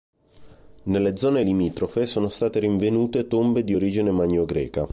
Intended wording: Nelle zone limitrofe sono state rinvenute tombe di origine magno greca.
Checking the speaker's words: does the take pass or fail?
pass